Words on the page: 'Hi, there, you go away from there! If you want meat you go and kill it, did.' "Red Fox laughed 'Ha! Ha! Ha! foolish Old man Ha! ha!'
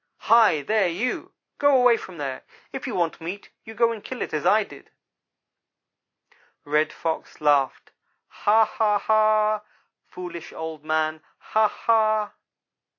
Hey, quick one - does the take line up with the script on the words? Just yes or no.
no